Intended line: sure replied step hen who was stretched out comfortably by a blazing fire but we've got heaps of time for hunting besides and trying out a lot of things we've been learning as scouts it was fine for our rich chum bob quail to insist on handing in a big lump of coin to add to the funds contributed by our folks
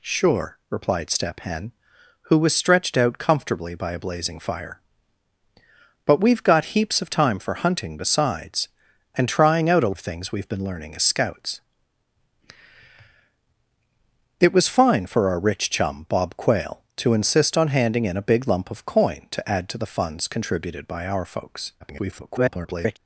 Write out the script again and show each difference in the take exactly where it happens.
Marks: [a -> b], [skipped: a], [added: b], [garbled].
sure replied step hen who was stretched out comfortably by a blazing fire but we've got heaps of time for hunting besides and trying out a [skipped: lot] of things we've been learning as scouts it was fine for our rich chum bob quail to insist on handing in a big lump of coin to add to the funds contributed by our folks [garbled]